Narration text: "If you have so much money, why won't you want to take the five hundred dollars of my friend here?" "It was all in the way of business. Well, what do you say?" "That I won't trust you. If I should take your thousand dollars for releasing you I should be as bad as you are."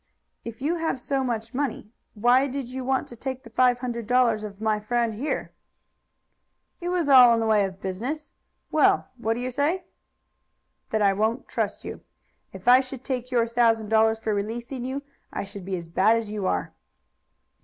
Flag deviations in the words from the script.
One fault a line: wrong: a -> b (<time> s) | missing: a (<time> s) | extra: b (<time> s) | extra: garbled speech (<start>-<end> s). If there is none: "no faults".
wrong: won't -> did (2.5 s)